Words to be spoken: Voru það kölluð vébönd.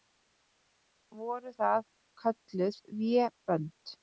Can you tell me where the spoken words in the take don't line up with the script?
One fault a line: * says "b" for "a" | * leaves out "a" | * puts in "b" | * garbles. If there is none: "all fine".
all fine